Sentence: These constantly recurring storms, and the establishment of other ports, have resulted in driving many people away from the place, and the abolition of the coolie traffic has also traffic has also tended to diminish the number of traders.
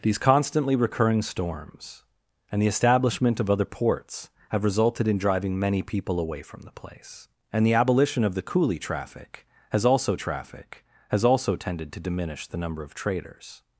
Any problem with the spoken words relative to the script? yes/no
no